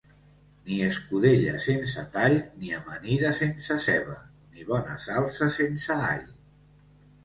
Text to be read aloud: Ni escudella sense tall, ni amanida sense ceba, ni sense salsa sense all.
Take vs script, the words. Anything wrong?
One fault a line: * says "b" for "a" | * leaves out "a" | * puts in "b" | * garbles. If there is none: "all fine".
* says "bona" for "sense"